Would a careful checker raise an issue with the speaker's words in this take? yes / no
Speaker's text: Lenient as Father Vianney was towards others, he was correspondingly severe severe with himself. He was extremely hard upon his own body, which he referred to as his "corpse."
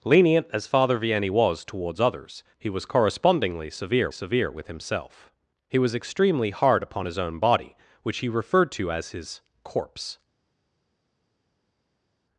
no